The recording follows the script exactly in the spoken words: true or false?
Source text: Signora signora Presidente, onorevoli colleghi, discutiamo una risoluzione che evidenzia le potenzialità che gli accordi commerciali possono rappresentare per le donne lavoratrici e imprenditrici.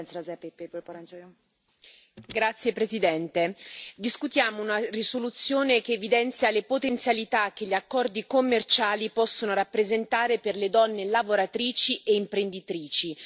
false